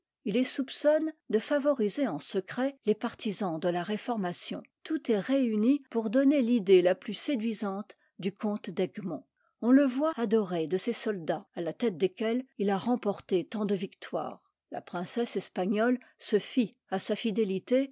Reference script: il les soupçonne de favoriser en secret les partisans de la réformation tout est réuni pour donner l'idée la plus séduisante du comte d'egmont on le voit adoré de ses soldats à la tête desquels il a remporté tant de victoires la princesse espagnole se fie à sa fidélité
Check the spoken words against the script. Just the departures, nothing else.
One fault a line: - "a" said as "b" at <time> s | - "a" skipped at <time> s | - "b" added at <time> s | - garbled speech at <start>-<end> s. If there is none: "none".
none